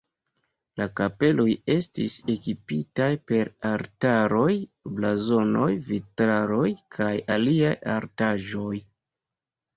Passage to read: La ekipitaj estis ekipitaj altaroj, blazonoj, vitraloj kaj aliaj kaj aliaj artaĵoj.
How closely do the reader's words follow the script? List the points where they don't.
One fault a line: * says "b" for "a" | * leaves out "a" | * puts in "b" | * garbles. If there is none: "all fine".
* says "kapeloj" for "ekipitaj"
* puts in "per"
* leaves out "kaj aliaj"